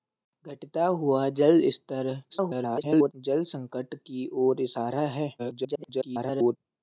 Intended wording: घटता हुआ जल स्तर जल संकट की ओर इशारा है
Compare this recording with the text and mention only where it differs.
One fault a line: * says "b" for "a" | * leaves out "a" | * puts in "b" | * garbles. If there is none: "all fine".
* garbles
* garbles